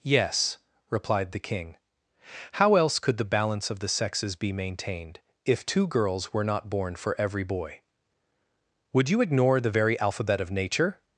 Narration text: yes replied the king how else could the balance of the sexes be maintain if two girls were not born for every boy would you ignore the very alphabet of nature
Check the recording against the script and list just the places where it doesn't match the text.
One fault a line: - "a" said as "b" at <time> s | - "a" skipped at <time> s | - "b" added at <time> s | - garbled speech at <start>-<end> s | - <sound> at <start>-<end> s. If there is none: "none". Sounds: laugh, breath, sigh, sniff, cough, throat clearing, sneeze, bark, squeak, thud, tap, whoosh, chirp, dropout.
- "maintain" said as "maintained" at 4.5 s